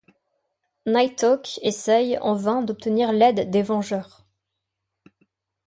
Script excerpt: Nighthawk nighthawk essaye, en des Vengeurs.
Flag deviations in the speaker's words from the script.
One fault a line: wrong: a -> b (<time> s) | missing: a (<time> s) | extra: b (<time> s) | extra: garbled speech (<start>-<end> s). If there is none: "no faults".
missing: nighthawk (1.6 s)
extra: vain d'obtenir l'aide (2.3 s)